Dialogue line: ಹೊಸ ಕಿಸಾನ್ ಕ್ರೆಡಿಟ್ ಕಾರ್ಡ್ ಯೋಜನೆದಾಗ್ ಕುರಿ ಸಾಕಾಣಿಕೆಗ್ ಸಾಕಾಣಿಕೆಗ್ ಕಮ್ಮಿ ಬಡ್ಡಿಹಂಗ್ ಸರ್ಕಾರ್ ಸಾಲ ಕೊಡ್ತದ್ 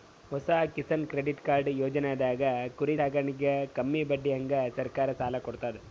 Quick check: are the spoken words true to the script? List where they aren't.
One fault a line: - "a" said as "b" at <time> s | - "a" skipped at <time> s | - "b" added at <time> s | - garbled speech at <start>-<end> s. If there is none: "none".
- "ಸಾಕಾಣಿಕೆಗ್" skipped at 3.7 s